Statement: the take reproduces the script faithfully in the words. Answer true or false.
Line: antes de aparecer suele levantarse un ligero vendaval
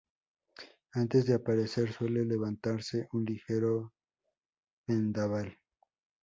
true